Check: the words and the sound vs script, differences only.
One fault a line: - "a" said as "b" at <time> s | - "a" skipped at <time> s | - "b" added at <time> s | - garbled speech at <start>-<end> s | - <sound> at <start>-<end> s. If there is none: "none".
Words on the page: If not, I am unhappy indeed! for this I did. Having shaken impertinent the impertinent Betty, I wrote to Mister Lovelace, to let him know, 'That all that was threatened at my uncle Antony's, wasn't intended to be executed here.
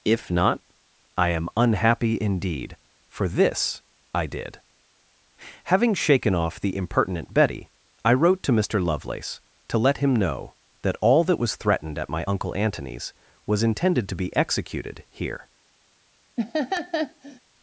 - "impertinent" said as "off" at 6.3 s
- "wasn't" said as "was" at 13.5 s
- laugh at 16.4-17.4 s